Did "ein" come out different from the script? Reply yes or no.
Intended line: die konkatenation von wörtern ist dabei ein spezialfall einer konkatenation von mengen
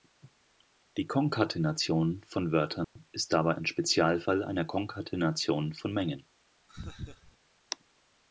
no